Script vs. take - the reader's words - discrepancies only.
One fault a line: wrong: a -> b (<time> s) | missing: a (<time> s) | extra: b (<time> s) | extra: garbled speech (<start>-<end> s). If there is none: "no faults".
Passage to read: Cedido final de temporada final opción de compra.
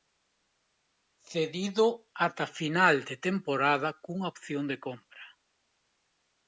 extra: ata (2.3 s)
wrong: final -> cunha (4.0 s)